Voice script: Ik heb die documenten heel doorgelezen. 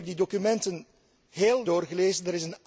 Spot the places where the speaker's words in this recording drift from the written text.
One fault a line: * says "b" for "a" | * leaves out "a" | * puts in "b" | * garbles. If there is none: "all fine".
all fine